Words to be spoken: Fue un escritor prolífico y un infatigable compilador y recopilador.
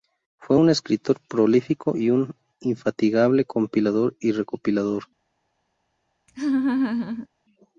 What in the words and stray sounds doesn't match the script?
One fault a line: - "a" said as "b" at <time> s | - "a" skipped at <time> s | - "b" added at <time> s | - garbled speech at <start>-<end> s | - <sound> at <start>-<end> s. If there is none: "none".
- laugh at 6.3-7.3 s